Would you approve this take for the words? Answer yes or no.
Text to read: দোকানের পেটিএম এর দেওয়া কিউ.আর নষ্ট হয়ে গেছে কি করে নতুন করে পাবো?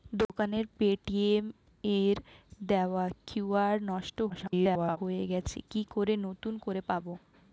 no